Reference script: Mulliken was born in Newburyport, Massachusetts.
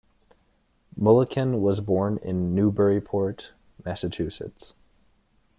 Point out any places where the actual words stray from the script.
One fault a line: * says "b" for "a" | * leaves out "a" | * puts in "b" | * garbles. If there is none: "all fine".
all fine